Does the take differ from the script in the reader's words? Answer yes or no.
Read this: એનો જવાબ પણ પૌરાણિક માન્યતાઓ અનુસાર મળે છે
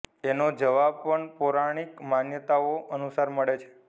no